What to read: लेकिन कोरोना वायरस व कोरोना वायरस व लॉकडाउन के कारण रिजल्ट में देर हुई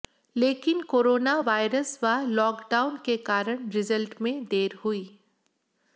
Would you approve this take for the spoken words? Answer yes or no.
no